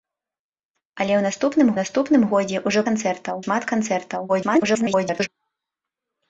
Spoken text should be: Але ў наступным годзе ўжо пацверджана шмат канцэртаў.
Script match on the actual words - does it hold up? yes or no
no